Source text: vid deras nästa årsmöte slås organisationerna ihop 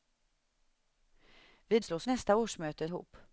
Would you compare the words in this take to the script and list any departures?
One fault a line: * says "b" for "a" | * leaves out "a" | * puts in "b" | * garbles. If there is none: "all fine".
* says "slås" for "deras"
* leaves out "slås organisationerna"